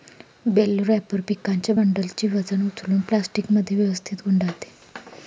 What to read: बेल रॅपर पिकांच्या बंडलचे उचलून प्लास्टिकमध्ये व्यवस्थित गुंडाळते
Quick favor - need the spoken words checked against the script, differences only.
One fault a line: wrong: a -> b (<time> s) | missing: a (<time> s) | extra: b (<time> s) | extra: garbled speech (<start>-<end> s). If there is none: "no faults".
extra: वजन (2.3 s)